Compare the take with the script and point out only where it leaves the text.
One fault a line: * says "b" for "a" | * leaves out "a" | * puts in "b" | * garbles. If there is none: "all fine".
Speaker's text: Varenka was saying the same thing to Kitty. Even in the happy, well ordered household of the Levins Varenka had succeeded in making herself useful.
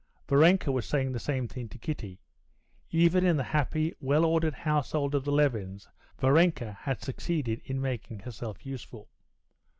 all fine